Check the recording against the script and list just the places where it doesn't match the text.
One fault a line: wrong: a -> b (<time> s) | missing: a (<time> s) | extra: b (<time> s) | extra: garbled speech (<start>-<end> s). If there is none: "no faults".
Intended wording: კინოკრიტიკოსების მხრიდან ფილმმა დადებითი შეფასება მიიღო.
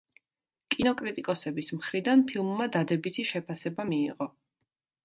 no faults